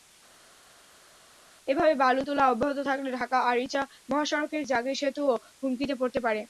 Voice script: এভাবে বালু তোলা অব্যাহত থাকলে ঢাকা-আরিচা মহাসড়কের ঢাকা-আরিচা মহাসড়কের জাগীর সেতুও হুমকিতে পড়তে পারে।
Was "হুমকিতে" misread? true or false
false